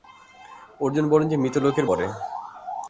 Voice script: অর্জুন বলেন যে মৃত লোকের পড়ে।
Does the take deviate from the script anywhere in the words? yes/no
no